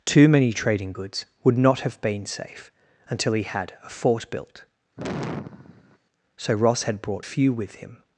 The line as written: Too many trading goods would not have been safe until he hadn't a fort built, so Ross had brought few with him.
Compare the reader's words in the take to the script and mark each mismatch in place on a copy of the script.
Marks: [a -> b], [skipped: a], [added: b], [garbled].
Too many trading goods would not have been safe until he [hadn't -> had] a fort built, so Ross had brought few with him.